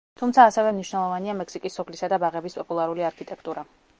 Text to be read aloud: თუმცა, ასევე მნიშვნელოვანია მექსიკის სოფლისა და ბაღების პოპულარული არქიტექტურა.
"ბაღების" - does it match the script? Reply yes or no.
yes